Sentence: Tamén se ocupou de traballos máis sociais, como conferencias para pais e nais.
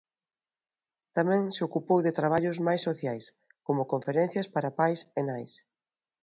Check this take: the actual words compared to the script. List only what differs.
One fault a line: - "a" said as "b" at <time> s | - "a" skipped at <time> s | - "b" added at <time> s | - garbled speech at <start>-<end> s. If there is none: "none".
none